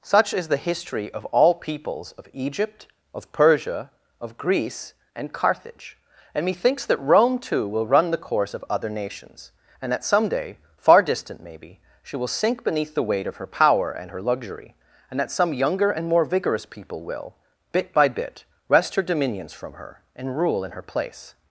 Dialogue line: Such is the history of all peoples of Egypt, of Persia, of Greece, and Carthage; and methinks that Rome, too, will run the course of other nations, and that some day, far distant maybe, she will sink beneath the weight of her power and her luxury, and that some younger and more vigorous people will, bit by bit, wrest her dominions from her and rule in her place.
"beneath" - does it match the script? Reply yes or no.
yes